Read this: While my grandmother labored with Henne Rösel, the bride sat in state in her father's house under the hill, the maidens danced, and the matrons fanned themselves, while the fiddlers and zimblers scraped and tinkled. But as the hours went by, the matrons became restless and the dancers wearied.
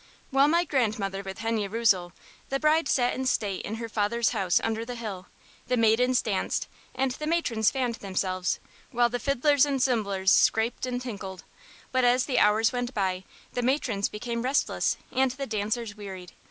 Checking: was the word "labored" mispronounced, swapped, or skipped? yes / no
yes